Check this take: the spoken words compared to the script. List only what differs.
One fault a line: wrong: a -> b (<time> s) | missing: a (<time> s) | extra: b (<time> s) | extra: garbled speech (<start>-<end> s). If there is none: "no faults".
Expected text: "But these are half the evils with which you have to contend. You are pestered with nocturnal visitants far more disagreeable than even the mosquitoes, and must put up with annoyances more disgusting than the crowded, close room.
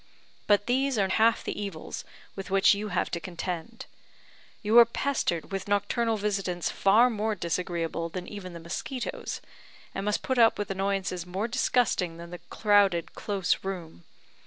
no faults